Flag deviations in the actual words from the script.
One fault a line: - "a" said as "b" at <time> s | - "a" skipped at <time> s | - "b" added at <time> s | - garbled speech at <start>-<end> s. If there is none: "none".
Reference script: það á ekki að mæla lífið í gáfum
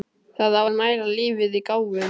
- "ekki" skipped at 0.6 s